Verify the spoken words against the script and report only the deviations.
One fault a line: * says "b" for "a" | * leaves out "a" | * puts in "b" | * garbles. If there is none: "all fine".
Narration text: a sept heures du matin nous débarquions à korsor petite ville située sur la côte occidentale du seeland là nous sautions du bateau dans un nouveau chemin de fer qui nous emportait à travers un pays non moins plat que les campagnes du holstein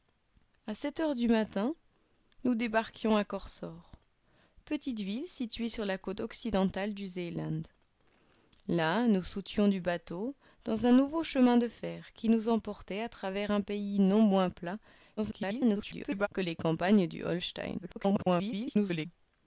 * garbles
* garbles